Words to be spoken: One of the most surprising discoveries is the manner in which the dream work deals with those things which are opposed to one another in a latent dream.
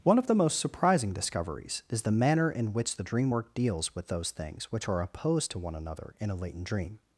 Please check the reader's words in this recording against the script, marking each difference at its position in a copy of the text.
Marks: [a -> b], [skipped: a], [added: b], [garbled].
One of the most surprising discoveries is the manner in which the dream work deals with those things which are opposed to one another in a latent dream.